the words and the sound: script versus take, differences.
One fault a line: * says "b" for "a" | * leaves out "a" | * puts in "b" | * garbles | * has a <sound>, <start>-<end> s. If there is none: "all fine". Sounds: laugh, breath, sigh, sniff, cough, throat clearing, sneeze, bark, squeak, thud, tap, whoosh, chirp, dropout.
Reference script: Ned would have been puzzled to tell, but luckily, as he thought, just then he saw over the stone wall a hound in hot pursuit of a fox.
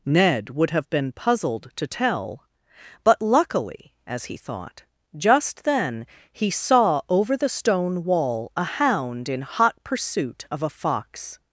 all fine